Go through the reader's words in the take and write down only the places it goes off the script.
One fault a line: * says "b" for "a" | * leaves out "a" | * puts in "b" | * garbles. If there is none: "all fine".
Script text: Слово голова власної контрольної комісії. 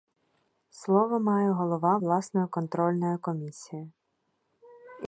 * puts in "має"